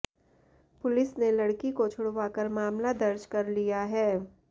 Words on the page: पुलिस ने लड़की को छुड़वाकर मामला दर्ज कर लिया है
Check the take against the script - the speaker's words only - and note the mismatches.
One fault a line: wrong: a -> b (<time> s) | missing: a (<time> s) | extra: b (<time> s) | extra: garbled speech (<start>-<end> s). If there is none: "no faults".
no faults